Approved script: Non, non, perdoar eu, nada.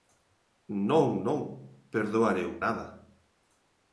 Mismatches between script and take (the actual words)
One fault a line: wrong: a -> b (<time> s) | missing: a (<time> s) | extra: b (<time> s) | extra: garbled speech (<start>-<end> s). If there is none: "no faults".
no faults